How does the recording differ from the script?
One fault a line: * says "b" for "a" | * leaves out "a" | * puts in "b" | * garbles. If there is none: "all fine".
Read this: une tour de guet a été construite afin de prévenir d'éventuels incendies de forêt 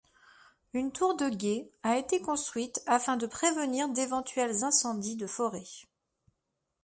all fine